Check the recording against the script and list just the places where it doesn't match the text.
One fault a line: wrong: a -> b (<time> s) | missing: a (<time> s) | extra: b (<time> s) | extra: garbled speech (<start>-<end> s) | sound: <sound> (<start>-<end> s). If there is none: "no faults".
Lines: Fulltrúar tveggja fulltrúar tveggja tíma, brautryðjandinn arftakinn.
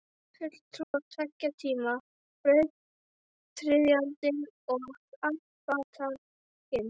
sound: dropout (0.8-0.9 s)
missing: fulltrúar tveggja (1.5 s)
extra: og (4.8 s)